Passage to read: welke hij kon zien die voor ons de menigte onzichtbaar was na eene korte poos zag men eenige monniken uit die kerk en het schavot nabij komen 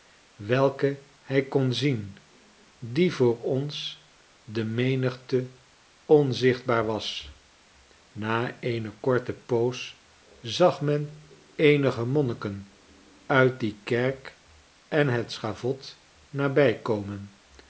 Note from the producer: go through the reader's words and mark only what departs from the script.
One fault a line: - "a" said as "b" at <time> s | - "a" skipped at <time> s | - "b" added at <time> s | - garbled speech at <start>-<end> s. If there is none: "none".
none